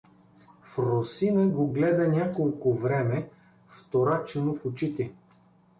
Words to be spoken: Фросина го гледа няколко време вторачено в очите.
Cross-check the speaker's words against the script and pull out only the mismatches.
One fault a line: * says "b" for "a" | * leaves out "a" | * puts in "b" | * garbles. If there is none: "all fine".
all fine